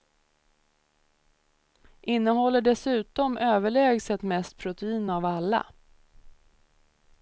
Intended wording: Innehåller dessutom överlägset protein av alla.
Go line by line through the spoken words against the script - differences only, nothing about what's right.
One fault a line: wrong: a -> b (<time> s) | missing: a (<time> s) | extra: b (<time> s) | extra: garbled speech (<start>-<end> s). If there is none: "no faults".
extra: mest (4.2 s)